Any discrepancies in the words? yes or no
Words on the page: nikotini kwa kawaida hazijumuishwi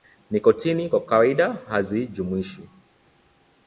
no